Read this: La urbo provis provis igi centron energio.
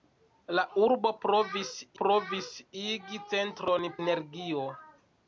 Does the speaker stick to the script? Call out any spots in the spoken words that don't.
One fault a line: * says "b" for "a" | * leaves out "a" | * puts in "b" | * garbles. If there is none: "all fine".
all fine